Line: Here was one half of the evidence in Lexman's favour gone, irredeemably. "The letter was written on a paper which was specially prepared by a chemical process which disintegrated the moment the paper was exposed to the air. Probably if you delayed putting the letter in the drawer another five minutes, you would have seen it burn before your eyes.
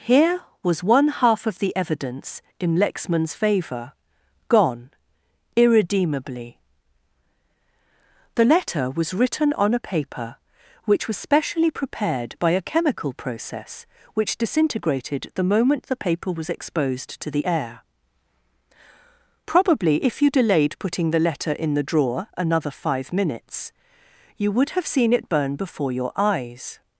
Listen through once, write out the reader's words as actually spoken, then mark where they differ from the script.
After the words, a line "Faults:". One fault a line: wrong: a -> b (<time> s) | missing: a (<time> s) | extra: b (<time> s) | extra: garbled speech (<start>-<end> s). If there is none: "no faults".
Here was one half of the evidence in Lexman's favour gone, irredeemably. "The letter was written on a paper which was specially prepared by a chemical process which disintegrated the moment the paper was exposed to the air. Probably if you delayed putting the letter in the drawer another five minutes, you would have seen it burn before your eyes.
Faults:
no faults